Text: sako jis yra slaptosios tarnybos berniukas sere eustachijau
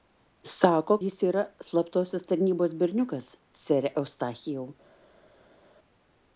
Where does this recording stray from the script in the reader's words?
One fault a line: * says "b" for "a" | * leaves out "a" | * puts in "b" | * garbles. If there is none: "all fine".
all fine